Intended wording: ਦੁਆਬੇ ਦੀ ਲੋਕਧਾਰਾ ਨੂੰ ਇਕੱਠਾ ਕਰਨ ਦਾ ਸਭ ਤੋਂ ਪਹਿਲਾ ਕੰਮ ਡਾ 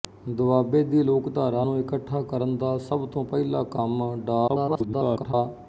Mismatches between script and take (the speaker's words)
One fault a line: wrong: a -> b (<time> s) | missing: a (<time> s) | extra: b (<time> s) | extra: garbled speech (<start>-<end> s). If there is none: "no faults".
extra: garbled speech (4.5-5.3 s)